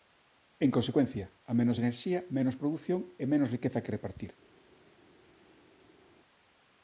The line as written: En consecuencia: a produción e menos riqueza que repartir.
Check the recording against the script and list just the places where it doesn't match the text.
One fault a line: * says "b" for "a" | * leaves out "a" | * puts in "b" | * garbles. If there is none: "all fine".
* puts in "menos enerxía menos"